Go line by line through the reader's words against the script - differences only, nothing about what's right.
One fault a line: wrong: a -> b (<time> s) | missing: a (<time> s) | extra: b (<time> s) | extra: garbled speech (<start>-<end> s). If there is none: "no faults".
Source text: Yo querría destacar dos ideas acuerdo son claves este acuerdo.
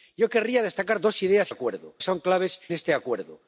no faults